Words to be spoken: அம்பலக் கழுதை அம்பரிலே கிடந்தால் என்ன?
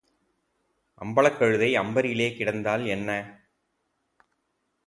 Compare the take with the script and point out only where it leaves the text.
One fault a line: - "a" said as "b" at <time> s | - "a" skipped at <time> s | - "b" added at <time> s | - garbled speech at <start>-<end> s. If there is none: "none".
none